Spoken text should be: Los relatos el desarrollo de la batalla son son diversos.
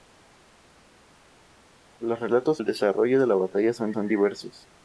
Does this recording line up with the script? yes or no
yes